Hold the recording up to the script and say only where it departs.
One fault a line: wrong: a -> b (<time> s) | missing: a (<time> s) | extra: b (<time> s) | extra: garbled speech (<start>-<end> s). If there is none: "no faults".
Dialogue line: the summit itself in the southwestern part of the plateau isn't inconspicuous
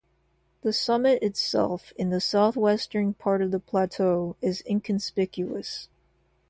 wrong: isn't -> is (4.4 s)